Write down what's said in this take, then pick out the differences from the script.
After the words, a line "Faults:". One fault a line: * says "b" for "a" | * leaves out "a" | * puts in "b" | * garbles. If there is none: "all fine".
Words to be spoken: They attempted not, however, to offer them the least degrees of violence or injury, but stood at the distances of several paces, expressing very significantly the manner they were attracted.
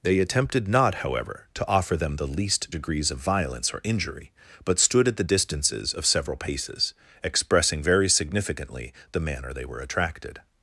They attempted not, however, to offer them the least degrees of violence or injury, but stood at the distances of several paces, expressing very significantly the manner they were attracted.
Faults:
all fine